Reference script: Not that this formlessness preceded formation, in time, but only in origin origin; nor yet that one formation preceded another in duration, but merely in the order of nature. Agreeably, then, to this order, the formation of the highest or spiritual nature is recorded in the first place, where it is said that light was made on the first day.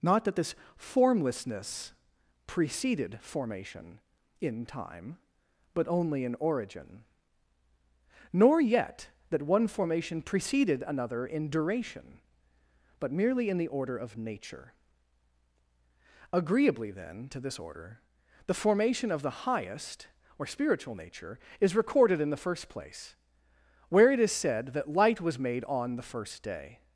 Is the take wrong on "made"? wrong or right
right